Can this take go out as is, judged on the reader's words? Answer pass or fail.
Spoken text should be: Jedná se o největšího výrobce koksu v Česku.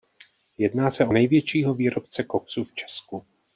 pass